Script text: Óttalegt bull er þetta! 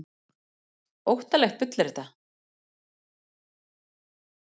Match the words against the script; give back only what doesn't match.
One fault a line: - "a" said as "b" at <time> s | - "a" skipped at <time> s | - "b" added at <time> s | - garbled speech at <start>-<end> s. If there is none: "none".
none